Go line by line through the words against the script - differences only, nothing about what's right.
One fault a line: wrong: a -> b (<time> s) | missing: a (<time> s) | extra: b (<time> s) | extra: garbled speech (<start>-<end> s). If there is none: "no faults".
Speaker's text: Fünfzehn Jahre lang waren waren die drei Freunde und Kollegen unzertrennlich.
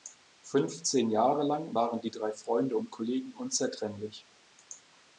missing: waren (2.0 s)